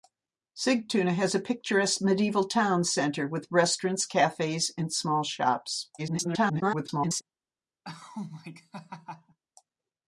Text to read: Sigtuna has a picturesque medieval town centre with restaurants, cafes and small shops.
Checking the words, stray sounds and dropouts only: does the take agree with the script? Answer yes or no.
no